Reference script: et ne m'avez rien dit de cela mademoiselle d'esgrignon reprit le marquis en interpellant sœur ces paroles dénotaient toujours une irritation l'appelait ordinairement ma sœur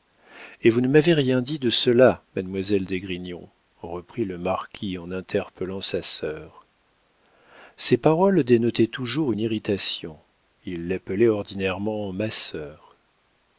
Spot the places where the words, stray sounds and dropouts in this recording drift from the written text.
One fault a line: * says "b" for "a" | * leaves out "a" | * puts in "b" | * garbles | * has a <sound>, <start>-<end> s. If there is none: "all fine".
* puts in "vous"
* puts in "sa"
* puts in "il"